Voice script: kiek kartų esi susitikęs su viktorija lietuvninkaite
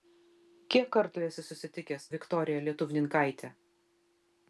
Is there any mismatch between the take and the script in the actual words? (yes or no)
yes